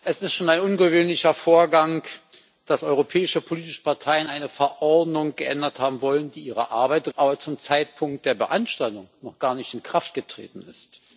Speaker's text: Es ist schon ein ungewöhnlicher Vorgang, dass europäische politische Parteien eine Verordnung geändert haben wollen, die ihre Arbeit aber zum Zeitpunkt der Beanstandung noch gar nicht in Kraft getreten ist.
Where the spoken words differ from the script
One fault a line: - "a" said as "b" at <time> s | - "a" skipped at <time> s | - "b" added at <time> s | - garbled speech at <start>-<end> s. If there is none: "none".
none